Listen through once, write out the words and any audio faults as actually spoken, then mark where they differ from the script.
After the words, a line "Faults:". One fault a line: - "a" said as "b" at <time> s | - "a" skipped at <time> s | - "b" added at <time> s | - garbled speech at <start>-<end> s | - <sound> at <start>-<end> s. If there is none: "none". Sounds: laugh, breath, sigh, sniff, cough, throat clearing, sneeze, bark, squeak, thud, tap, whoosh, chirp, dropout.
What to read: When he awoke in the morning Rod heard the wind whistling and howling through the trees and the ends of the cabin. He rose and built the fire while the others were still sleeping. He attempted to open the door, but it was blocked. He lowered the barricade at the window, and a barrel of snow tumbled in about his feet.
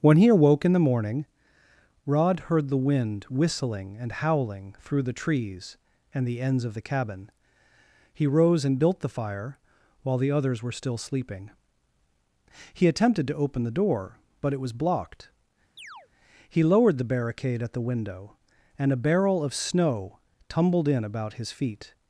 When he awoke in the morning Rod heard the wind whistling and howling through the trees and the ends of the cabin. He rose and built the fire while the others were still sleeping. He attempted to open the door, but it was blocked. He lowered the barricade at the window, and a barrel of snow tumbled in about his feet.
Faults:
- chirp at 15.8-16.1 s